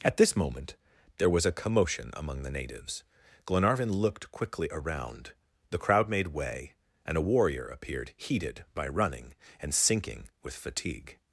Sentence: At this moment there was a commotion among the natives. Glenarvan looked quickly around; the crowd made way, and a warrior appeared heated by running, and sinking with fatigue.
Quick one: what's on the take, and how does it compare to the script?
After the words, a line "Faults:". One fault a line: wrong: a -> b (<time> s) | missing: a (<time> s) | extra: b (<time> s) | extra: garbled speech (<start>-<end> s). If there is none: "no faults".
At this moment there was a commotion among the natives. Glenarvan looked quickly around; the crowd made way, and a warrior appeared heated by running, and sinking with fatigue.
Faults:
no faults